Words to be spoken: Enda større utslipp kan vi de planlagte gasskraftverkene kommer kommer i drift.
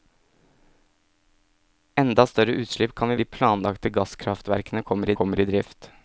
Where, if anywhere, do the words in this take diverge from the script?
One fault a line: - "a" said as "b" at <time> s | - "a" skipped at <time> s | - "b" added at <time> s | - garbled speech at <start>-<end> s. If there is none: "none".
none